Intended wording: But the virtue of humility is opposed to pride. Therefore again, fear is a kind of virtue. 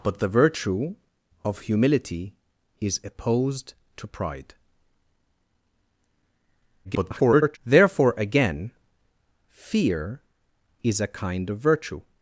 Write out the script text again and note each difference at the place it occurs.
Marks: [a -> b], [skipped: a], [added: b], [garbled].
But the virtue of humility is opposed to pride. [garbled] Therefore again, fear is a kind of virtue.